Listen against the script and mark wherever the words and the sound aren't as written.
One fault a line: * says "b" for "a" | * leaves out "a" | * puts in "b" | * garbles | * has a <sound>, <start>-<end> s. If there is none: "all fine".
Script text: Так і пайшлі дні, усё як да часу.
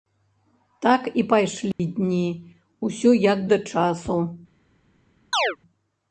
* has a dropout, 1.7-1.8 s
* has a chirp, 5.3-5.6 s